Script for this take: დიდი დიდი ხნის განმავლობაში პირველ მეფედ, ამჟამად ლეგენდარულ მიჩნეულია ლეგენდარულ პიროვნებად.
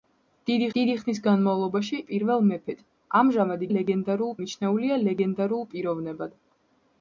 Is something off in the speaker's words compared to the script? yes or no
no